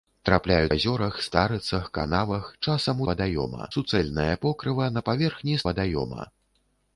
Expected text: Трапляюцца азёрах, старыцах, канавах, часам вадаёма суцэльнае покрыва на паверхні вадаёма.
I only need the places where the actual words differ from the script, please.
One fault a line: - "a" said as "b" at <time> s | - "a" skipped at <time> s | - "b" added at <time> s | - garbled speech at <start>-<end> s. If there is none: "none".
none